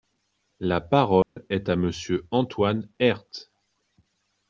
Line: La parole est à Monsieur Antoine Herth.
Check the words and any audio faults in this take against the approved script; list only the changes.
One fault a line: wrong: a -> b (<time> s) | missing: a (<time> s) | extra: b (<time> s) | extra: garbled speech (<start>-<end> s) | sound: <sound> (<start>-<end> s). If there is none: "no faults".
sound: dropout (1.2-1.4 s)